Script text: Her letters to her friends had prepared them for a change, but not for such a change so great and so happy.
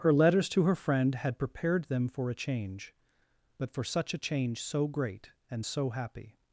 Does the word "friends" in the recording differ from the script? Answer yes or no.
yes